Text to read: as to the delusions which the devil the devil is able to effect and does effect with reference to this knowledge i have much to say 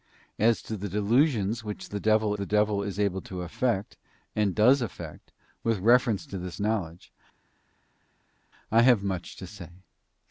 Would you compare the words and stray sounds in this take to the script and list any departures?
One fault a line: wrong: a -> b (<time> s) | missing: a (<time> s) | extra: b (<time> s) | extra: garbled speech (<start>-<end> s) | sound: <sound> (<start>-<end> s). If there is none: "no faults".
no faults